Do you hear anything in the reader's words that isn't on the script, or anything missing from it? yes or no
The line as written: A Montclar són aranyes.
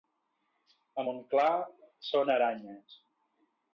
no